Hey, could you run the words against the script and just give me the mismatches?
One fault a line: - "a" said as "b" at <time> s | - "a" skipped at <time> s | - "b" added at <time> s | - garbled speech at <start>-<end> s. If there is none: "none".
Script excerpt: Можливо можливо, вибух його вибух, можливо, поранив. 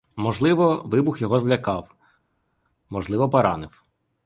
- "можливо" skipped at 0.8 s
- "вибух" said as "злякав" at 1.4 s